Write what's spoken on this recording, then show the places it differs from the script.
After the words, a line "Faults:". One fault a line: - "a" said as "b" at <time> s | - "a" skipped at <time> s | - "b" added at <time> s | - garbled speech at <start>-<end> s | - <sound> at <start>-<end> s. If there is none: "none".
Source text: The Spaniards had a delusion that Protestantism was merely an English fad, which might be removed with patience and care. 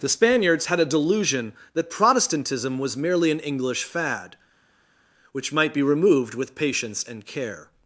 The Spaniards had a delusion that Protestantism was merely an English fad, which might be removed with patience and care.
Faults:
none